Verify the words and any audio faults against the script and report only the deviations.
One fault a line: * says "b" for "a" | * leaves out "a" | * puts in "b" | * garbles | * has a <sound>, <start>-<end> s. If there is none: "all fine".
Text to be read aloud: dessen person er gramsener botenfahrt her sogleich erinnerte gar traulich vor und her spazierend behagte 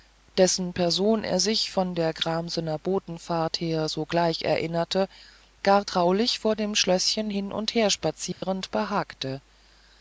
* puts in "sich von der"
* puts in "dem schlößchen hin"
* has a dropout, 8.3-8.4 s